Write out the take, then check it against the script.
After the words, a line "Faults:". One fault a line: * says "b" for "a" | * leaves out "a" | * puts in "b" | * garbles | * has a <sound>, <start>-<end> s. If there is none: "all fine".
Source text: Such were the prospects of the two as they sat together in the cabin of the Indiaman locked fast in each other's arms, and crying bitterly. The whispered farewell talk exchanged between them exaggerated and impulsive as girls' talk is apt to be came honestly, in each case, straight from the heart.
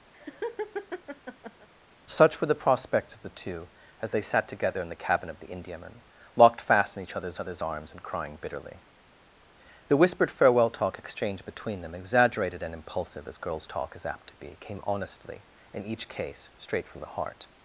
Such were the prospects of the two as they sat together in the cabin of the Indiaman locked fast in each other's other's arms, and crying bitterly. The whispered farewell talk exchanged between them exaggerated and impulsive as girls' talk is apt to be came honestly, in each case, straight from the heart.
Faults:
* has a laugh, 0.1-1.7 s
* puts in "other's"